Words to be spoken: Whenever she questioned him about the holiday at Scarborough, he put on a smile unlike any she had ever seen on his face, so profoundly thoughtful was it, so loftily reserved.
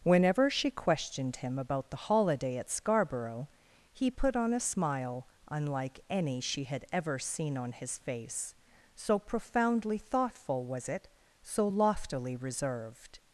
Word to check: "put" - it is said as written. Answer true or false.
true